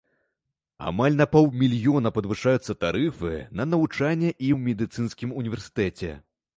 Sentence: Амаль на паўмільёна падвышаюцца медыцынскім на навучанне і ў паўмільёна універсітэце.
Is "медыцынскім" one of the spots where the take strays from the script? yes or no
yes